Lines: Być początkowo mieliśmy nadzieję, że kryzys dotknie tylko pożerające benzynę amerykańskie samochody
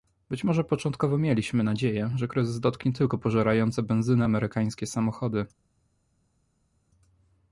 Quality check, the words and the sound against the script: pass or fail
fail